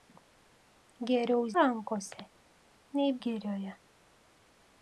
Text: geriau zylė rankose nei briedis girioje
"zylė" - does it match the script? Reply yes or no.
no